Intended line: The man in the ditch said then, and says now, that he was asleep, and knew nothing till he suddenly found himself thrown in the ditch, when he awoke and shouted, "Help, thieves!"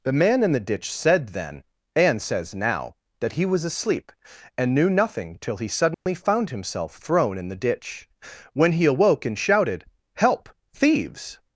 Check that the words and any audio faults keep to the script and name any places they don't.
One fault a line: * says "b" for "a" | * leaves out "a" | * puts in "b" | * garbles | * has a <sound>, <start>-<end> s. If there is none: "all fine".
* has a dropout, 5.9-6.1 s